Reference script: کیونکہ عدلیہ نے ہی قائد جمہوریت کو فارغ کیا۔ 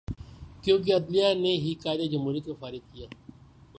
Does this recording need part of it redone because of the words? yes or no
no